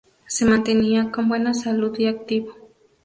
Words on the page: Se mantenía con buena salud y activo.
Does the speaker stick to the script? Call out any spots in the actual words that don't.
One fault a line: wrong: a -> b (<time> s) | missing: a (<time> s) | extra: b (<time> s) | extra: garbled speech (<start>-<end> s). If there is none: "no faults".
no faults